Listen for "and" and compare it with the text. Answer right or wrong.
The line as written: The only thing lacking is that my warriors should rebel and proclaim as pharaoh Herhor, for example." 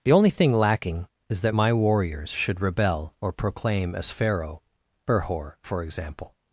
wrong